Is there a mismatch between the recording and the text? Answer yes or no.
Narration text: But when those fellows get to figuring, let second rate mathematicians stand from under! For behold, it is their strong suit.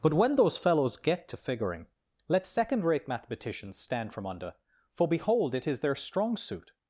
no